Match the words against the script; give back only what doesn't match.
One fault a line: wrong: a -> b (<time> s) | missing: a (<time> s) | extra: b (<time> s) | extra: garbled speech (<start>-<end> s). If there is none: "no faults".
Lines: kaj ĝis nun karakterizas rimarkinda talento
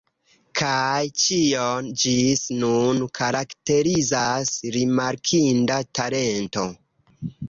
extra: ĉion (1.2 s)